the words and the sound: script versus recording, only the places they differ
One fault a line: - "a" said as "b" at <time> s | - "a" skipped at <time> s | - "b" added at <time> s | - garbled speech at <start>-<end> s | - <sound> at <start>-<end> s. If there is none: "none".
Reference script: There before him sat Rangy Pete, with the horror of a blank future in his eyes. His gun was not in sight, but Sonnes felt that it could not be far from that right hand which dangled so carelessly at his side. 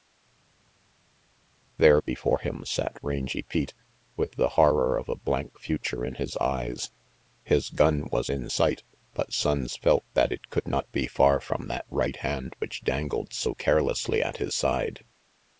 - "not" skipped at 8.3 s